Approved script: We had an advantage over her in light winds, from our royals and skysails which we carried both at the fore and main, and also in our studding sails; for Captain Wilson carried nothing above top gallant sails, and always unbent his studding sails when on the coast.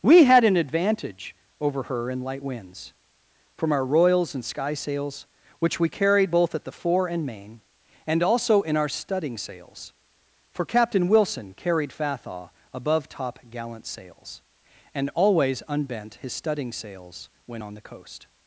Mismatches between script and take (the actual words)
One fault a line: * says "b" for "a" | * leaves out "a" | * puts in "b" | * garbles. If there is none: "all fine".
* says "fathaw" for "nothing"